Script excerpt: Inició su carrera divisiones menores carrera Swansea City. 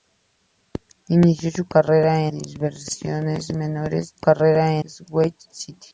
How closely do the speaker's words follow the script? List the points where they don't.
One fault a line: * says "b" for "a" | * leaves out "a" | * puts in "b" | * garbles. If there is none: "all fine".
all fine